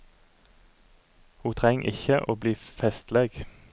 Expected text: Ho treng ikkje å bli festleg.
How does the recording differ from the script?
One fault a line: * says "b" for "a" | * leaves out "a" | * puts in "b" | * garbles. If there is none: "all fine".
all fine